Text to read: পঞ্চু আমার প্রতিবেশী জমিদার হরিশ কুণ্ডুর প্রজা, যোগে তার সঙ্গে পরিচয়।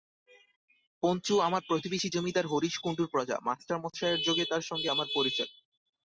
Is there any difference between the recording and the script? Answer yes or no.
yes